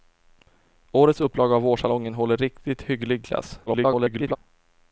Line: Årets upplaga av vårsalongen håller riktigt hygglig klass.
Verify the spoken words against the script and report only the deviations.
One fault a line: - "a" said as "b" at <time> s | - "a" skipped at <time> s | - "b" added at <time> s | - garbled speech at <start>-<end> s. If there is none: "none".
- garbled speech at 3.7-4.4 s